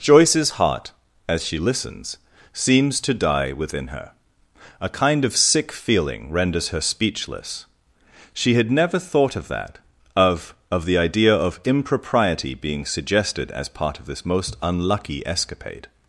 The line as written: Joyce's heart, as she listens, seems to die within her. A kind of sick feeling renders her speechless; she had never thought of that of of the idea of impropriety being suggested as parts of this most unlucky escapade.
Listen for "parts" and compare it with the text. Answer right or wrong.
wrong